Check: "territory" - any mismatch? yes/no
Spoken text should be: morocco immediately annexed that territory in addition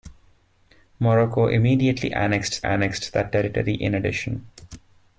no